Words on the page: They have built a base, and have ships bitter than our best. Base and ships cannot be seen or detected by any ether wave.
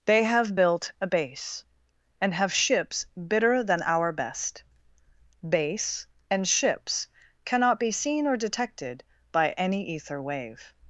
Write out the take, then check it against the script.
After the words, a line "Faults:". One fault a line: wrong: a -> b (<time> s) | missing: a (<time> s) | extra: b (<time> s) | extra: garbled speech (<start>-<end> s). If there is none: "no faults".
They have built a base, and have ships bitter than our best. Base and ships cannot be seen or detected by any ether wave.
Faults:
no faults